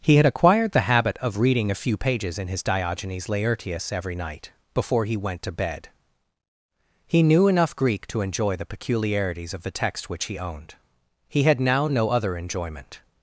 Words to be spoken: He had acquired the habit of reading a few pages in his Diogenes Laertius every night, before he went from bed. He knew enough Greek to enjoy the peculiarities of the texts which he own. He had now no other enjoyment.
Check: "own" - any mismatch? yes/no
yes